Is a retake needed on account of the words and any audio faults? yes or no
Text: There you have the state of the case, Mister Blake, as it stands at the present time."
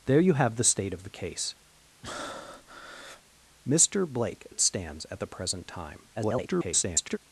yes